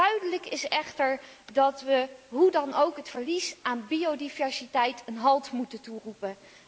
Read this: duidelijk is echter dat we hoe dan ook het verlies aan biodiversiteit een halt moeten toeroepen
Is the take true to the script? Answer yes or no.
yes